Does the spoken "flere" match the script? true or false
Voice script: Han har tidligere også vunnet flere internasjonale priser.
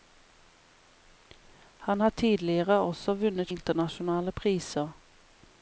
false